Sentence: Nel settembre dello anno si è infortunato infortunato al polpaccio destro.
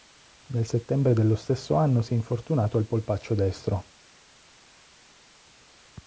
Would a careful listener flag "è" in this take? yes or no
no